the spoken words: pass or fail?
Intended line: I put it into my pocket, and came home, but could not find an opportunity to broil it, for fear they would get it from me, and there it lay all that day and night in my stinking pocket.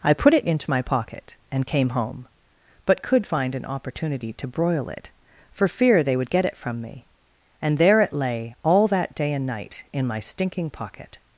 fail